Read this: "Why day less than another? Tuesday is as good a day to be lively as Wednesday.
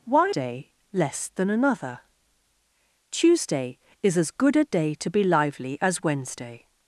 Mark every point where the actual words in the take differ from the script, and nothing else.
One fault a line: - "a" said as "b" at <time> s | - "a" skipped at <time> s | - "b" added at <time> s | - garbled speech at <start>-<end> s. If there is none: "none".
none